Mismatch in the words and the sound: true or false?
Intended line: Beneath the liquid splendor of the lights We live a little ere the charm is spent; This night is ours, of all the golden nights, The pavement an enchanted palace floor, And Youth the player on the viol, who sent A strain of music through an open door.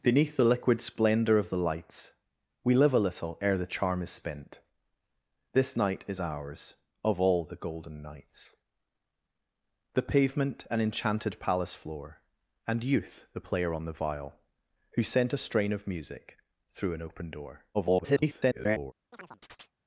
true